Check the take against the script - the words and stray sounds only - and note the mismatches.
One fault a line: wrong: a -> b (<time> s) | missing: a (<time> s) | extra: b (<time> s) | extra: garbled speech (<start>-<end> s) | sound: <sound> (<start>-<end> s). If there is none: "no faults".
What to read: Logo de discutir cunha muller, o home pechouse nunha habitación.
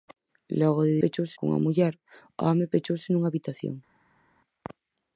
wrong: discutir -> pechouse (1.0 s)